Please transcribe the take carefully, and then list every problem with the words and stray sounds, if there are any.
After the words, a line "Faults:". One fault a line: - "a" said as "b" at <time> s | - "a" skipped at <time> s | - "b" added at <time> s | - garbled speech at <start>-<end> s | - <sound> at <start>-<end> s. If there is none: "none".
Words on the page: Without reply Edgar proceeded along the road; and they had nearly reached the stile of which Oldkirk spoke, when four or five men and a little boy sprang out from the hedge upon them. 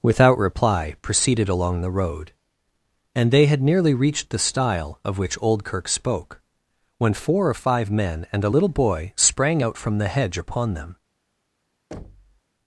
Without reply proceeded along the road; and they had nearly reached the stile of which Oldkirk spoke, when four or five men and a little boy sprang out from the hedge upon them.
Faults:
- "Edgar" skipped at 0.9 s
- thud at 11.9-12.4 s